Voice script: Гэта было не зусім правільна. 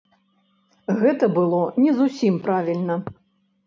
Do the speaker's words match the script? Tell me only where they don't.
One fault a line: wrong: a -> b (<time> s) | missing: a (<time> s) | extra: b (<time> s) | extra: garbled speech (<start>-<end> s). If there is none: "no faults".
no faults